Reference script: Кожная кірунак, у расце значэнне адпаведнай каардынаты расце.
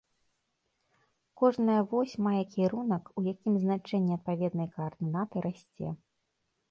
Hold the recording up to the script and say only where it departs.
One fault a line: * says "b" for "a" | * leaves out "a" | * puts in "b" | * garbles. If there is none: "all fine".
* puts in "вось мае"
* says "якім" for "расце"